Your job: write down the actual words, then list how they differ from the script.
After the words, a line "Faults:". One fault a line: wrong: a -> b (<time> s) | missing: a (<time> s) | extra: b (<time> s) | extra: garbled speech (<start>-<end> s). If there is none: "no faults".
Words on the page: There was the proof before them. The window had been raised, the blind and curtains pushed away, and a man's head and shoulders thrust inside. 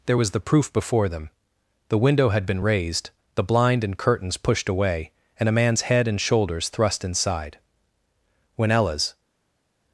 There was the proof before them. The window had been raised, the blind and curtains pushed away, and a man's head and shoulders thrust inside. When Ella's
Faults:
extra: When Ella's (8.6 s)